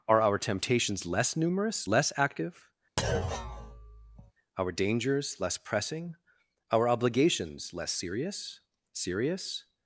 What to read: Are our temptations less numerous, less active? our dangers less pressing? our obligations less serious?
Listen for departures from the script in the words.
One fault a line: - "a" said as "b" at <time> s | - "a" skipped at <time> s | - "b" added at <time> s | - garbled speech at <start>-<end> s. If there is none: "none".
- "serious" added at 8.9 s